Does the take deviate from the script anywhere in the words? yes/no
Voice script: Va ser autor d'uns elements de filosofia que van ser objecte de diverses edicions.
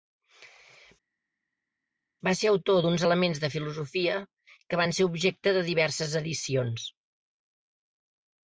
no